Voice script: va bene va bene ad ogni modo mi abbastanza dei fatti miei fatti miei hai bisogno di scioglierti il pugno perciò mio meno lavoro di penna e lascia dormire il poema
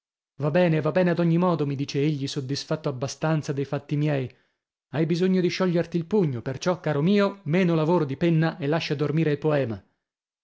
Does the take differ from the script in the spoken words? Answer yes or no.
yes